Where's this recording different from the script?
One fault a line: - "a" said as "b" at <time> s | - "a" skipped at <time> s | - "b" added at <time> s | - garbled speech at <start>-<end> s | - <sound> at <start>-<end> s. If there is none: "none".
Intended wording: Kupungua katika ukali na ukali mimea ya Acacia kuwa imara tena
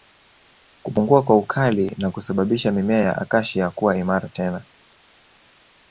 - "katika" said as "kwa" at 1.2 s
- "ukali" said as "kusababisha" at 2.1 s